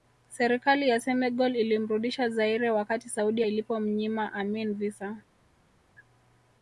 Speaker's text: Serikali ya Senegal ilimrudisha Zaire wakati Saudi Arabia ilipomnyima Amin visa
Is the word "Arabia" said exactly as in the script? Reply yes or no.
no